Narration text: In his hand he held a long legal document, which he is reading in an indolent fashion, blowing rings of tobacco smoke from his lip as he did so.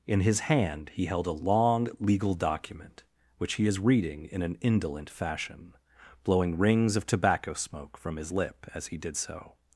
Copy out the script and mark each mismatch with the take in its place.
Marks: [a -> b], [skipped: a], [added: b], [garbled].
In his hand he held a long legal document, which he is reading in an indolent fashion, blowing rings of tobacco smoke from his lip as he did so.